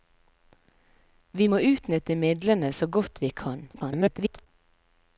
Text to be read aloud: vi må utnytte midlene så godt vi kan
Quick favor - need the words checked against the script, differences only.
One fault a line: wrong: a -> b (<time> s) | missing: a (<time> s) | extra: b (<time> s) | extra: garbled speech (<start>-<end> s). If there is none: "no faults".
extra: garbled speech (3.7-4.5 s)